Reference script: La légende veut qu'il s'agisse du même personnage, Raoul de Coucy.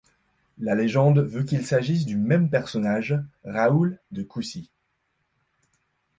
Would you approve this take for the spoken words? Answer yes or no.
yes